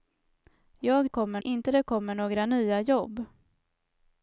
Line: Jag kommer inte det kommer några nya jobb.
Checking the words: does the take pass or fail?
pass